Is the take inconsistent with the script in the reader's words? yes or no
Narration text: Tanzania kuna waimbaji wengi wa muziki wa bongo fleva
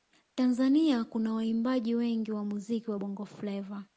no